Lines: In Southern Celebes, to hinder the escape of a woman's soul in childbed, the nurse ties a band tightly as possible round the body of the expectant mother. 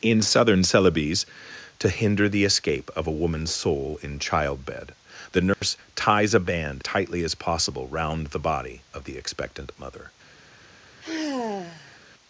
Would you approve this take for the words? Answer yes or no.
yes